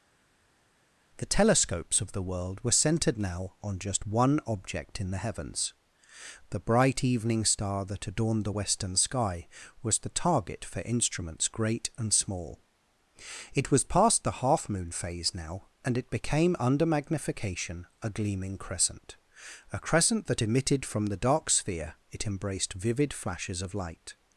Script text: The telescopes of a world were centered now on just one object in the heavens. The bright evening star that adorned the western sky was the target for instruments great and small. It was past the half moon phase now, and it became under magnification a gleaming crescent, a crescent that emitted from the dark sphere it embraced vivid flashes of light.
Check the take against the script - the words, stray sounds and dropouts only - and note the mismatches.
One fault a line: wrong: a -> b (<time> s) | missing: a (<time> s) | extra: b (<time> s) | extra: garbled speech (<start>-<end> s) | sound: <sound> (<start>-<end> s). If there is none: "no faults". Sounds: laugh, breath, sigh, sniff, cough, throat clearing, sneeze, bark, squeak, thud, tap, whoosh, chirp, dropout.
wrong: a -> the (2.1 s)